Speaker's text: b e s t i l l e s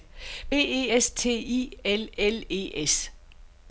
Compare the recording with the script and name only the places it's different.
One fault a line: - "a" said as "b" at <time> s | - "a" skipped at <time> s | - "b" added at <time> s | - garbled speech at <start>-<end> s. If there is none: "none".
none